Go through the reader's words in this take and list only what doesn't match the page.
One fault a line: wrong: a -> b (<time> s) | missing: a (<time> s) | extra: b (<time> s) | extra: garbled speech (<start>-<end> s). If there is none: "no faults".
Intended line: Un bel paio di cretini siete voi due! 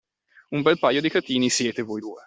no faults